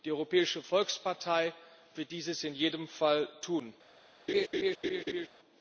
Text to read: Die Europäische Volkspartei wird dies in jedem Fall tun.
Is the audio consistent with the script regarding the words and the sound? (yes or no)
no